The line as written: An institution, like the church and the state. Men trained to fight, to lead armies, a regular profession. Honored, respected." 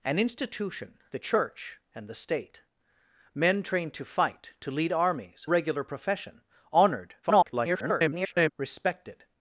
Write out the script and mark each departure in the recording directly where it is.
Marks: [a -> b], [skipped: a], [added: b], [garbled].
An institution, [skipped: like] the church and the state. Men trained to fight, to lead armies, [skipped: a] regular profession. Honored, [garbled] respected."